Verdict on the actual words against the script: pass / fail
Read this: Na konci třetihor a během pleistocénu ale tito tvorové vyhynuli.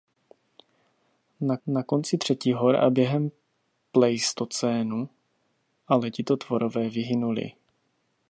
fail